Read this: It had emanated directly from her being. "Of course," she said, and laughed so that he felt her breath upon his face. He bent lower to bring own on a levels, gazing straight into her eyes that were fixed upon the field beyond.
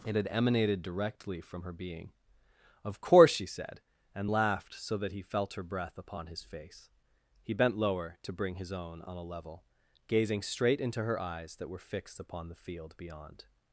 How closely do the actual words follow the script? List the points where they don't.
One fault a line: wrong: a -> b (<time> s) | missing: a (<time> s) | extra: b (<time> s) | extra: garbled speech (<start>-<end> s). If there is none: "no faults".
extra: his (8.5 s)
wrong: levels -> level (9.2 s)